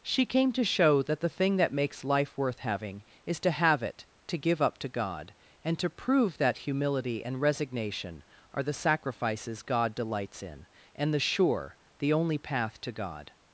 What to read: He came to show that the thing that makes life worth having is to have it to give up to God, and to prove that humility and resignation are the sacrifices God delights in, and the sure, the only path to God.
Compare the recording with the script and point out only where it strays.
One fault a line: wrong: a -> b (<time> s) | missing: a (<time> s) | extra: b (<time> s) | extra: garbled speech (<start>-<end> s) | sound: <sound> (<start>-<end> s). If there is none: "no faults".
wrong: He -> She (0.0 s)